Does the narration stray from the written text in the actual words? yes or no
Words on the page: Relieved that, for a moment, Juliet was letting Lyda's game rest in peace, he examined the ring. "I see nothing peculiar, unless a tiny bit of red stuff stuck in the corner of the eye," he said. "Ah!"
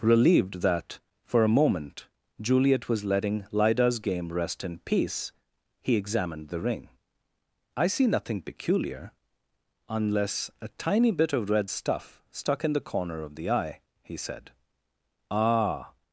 no